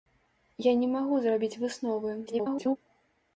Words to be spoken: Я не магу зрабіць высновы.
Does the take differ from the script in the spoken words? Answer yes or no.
yes